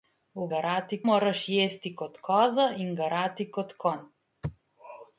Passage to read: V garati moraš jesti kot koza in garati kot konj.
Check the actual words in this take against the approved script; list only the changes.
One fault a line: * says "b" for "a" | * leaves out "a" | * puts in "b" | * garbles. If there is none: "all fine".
all fine